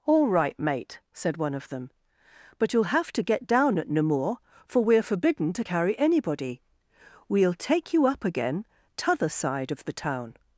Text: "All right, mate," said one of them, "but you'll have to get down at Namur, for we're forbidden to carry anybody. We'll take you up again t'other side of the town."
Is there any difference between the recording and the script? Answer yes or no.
no